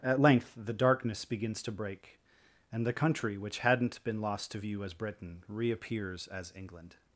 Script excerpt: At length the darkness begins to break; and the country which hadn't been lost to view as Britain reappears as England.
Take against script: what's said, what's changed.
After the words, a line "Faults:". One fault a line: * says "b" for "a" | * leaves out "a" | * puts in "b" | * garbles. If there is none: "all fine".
At length the darkness begins to break; and the country which hadn't been lost to view as Britain reappears as England.
Faults:
all fine